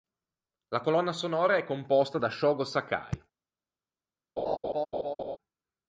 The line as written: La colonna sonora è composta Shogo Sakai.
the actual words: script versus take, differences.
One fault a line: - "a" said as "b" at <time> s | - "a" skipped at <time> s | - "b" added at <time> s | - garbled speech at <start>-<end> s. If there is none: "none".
- "da" added at 2.2 s